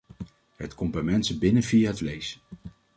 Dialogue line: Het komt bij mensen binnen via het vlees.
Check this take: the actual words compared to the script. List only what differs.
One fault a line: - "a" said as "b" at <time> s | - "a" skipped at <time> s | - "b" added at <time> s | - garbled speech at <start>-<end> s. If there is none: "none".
none